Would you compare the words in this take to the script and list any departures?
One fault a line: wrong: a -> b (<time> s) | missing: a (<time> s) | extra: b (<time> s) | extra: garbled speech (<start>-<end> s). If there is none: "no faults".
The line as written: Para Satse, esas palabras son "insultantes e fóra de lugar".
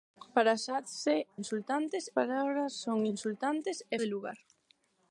wrong: esas -> insultantes (1.4 s)
missing: fóra (4.0 s)